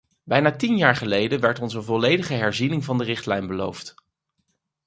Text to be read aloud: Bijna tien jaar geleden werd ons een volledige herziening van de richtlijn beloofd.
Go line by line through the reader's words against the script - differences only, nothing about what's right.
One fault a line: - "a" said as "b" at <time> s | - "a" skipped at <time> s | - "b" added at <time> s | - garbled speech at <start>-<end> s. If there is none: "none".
none